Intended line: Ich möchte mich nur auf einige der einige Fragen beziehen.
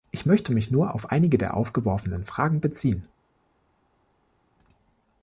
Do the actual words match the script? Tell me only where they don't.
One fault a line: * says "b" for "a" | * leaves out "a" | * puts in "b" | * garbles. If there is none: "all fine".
* says "aufgeworfenen" for "einige"